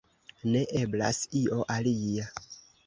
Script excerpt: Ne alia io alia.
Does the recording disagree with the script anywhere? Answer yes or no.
yes